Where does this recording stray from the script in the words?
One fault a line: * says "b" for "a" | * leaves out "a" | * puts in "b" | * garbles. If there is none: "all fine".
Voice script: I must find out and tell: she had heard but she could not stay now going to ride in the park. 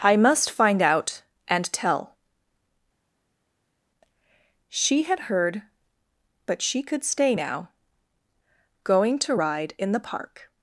* leaves out "not"